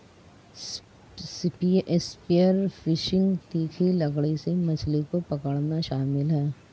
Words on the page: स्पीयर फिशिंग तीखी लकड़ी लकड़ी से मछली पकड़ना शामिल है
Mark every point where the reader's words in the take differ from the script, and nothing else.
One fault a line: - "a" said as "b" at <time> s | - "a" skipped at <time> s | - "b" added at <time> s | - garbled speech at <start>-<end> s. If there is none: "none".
- "लकड़ी" skipped at 4.4 s
- "को" added at 5.0 s